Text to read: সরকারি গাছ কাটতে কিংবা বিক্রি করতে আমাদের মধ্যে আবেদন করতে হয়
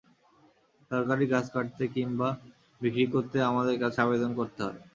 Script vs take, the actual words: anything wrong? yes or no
yes